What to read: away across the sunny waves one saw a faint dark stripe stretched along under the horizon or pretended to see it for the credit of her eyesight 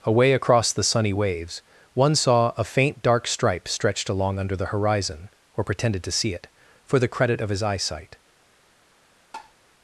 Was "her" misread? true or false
true